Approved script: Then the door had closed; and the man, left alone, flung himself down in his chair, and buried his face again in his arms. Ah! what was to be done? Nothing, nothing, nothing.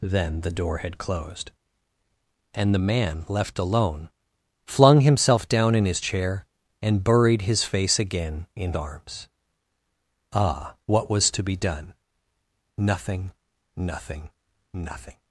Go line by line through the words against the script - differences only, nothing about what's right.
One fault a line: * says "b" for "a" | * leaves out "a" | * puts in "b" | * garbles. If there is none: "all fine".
* leaves out "his"